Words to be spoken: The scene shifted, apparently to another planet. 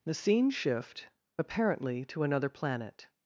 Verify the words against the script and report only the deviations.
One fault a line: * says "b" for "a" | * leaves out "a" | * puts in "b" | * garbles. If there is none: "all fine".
* says "shift" for "shifted"